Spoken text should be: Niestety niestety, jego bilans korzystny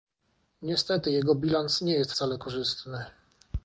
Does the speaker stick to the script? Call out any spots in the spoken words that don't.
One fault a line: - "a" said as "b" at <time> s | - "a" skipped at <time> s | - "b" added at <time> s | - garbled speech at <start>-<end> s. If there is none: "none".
- "niestety" skipped at 1.1 s
- "nie jest wcale" added at 1.8 s